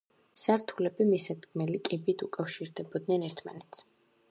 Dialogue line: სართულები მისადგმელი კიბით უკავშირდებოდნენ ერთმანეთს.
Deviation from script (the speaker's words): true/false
false